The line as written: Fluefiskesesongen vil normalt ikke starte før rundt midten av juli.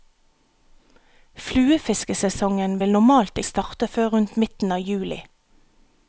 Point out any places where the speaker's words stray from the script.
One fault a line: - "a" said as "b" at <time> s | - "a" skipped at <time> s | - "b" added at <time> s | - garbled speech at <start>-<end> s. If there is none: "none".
- "ikke" skipped at 3.4 s